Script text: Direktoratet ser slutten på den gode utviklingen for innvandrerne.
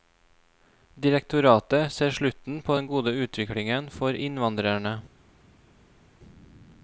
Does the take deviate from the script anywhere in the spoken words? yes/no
no